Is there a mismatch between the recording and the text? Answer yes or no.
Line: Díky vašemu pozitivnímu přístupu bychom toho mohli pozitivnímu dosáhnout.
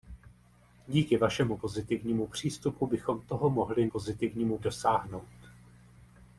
no